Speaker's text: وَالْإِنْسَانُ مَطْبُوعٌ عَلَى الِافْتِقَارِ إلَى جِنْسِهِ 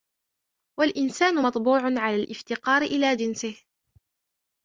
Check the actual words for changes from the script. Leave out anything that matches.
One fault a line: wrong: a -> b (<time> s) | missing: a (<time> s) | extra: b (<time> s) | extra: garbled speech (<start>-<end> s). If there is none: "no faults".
no faults